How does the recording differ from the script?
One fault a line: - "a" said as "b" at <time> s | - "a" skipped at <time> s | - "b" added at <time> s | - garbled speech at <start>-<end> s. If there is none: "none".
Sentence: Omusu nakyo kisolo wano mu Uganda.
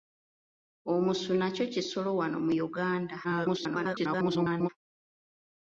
- garbled speech at 3.2-4.7 s